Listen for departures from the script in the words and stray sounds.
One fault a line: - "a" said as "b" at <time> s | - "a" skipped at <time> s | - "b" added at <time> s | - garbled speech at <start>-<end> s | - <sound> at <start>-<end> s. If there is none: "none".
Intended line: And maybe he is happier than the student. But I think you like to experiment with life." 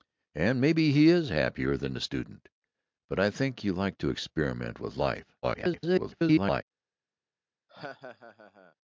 - garbled speech at 5.4-6.6 s
- laugh at 7.7-8.7 s